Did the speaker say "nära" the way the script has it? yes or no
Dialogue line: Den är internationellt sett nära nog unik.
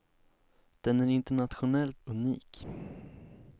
no